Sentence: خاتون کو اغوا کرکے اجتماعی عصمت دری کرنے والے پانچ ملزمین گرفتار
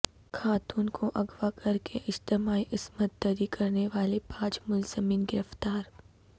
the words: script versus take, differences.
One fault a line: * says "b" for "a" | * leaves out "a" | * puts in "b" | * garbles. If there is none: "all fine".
all fine